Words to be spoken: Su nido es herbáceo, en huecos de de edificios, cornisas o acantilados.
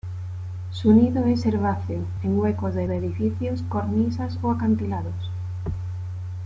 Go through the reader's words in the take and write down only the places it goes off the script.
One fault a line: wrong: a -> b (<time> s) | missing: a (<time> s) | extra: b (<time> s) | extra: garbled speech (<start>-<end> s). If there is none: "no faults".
no faults